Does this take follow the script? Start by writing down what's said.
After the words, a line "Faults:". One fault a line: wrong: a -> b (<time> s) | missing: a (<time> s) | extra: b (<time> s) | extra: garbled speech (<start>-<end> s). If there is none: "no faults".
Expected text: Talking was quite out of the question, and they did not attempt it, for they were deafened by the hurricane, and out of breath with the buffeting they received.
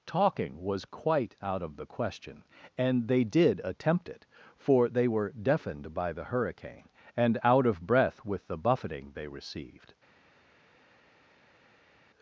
Talking was quite out of the question, and they did attempt it, for they were deafened by the hurricane, and out of breath with the buffeting they received.
Faults:
missing: not (3.6 s)